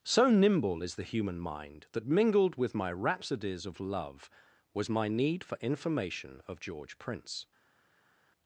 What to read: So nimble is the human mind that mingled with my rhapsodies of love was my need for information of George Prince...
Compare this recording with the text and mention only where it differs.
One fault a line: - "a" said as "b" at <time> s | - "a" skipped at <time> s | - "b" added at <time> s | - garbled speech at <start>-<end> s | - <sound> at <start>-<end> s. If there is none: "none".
none